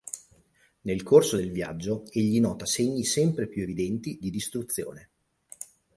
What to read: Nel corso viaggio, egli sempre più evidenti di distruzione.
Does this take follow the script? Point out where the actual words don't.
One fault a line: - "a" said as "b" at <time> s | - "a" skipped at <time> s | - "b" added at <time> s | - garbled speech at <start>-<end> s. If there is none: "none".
- "del" added at 1.3 s
- "nota segni" added at 2.4 s